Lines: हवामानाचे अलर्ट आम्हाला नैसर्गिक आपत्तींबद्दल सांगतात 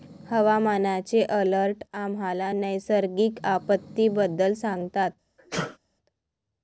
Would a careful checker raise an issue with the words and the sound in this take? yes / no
yes